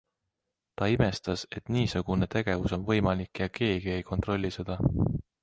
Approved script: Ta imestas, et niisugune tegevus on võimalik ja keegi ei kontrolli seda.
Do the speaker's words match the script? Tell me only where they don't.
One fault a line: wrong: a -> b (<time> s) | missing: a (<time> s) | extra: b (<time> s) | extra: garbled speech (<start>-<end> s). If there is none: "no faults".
no faults